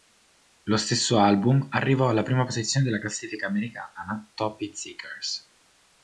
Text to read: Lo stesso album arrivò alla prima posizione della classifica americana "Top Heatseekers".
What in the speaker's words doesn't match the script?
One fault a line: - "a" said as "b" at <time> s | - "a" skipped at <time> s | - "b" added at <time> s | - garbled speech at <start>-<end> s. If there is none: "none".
none